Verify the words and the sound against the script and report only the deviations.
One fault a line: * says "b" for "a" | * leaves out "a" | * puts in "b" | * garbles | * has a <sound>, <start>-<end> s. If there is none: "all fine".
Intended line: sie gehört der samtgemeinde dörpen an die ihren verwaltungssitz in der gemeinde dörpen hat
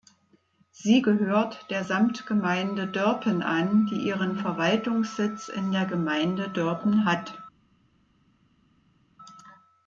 all fine